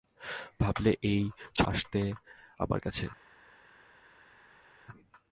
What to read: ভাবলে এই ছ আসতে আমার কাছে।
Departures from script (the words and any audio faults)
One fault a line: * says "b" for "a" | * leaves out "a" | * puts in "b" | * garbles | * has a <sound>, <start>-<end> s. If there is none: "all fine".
all fine